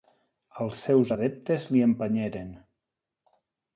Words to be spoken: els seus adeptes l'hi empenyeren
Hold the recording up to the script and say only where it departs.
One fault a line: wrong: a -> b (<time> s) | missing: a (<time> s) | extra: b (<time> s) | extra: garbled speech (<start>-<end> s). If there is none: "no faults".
no faults